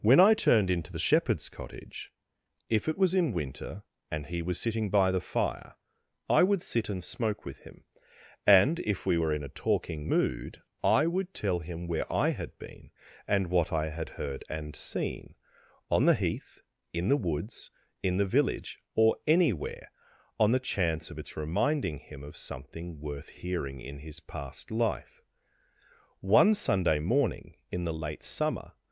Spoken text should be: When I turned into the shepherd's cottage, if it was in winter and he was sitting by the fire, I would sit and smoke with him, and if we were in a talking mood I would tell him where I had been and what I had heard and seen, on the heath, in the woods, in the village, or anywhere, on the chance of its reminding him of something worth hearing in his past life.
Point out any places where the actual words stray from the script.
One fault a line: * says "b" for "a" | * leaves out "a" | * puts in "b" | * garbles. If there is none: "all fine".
* puts in "One Sunday morning in the late summer"